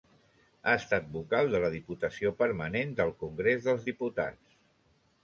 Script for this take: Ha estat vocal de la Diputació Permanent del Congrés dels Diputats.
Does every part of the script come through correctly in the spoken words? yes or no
yes